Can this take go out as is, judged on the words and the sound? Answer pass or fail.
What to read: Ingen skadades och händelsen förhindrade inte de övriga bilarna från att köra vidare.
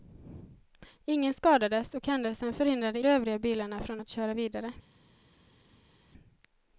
fail